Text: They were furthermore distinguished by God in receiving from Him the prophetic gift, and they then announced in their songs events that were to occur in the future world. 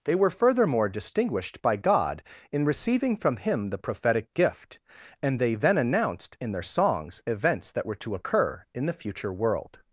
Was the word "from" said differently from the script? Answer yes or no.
no